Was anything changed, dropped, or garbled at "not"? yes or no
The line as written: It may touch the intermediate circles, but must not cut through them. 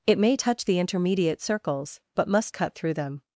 yes